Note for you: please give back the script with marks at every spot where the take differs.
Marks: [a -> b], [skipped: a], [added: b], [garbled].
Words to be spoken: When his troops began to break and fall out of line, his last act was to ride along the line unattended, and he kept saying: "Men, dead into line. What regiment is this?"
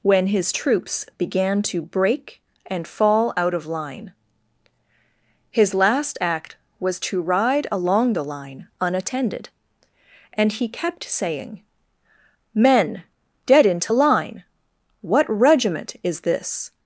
When his troops began to break and fall out of line, his last act was to ride along the line unattended, and he kept saying: "Men, dead into line. What regiment is this?"